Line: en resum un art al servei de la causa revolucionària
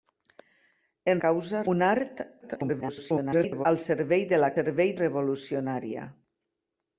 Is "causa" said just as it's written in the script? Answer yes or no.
no